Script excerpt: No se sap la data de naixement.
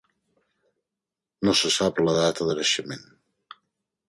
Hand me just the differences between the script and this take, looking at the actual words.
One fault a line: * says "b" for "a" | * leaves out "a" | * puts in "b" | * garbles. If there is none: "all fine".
all fine